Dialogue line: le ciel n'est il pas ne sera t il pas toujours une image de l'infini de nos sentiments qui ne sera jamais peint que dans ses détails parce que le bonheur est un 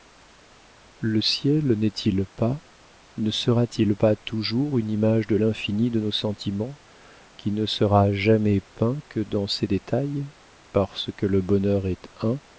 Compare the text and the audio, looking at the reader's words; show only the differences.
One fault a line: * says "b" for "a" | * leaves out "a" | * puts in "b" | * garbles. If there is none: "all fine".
all fine